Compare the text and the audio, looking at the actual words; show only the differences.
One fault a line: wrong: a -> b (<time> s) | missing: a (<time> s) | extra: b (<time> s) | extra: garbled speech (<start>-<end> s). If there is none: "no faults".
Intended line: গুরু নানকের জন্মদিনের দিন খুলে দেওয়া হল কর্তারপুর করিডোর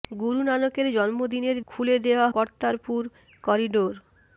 missing: দিন (1.6 s)
missing: হল (2.3 s)